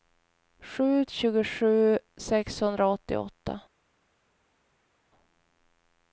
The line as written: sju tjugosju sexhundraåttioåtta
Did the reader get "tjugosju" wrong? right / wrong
right